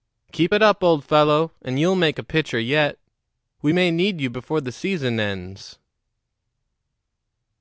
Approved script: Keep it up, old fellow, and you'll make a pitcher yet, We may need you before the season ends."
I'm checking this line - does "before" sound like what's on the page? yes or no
yes